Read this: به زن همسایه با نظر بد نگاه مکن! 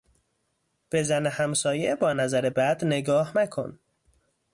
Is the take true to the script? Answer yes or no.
yes